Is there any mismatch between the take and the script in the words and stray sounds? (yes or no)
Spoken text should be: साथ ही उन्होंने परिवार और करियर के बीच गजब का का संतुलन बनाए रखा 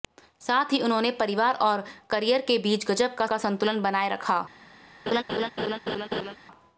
yes